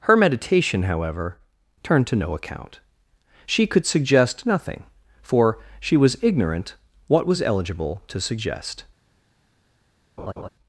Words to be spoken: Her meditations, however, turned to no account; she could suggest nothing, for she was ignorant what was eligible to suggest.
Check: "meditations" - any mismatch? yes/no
yes